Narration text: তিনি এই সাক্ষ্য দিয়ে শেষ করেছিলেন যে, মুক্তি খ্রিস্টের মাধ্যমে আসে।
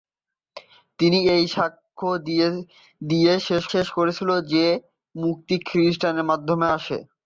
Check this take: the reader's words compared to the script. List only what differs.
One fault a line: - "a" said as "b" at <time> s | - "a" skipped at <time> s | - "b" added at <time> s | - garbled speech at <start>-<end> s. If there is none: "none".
- "শেষ" added at 3.7 s